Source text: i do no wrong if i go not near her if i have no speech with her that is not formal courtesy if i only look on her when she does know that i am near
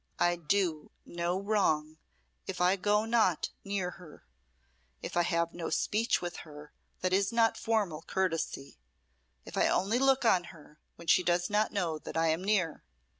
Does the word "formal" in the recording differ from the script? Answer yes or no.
no